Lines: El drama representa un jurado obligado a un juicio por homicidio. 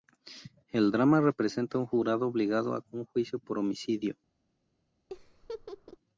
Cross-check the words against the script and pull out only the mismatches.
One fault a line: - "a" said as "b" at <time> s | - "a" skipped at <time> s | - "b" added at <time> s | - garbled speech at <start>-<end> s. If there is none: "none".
none